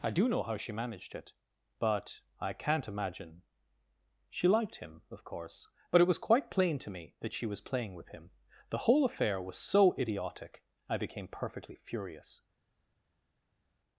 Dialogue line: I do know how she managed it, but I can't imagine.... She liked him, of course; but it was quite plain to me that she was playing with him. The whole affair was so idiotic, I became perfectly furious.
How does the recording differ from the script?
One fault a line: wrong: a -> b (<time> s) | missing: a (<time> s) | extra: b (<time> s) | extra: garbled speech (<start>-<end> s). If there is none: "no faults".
no faults